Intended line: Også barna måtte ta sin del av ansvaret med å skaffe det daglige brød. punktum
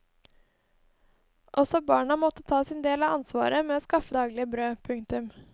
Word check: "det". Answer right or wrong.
wrong